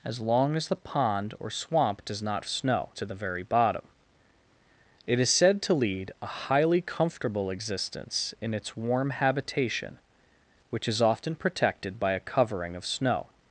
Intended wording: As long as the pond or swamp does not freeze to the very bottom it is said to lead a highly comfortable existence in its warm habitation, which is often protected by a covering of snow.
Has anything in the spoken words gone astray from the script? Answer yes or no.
yes